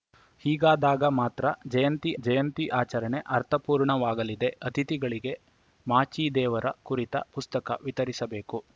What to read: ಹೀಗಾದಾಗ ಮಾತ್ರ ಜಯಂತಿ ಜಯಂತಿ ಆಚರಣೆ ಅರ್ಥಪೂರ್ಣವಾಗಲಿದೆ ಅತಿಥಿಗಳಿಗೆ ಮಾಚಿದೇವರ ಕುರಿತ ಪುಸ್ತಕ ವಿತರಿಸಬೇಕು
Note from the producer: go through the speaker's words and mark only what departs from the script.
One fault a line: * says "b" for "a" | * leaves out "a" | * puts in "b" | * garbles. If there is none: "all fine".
all fine